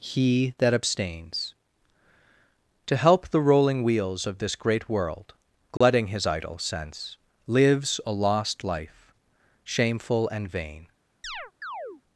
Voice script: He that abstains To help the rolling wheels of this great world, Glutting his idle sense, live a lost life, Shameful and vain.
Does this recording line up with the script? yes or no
no